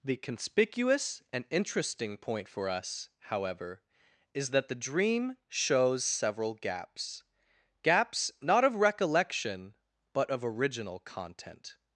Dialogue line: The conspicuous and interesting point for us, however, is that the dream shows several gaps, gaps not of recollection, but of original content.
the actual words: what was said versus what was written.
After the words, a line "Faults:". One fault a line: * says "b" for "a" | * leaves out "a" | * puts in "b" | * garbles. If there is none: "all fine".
The conspicuous and interesting point for us, however, is that the dream shows several gaps, gaps not of recollection, but of original content.
Faults:
all fine